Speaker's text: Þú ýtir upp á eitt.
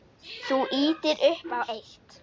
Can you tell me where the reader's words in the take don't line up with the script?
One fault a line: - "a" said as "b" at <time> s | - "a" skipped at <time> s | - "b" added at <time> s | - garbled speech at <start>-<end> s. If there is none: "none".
none